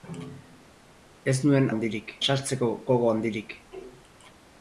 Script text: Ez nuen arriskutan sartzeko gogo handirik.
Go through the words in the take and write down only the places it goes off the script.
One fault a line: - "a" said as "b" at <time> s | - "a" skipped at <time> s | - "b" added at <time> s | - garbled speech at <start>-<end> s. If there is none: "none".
- "arriskutan" said as "handirik" at 1.7 s